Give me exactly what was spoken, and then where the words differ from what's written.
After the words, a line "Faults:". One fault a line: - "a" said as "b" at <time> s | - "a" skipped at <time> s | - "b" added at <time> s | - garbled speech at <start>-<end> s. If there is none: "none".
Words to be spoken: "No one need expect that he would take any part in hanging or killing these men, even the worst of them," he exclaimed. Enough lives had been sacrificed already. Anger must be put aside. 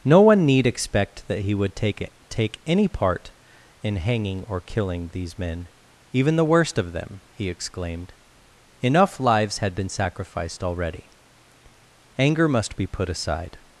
"No one need expect that he would take take any part in hanging or killing these men, even the worst of them," he exclaimed. Enough lives had been sacrificed already. Anger must be put aside.
Faults:
- "take" added at 2.3 s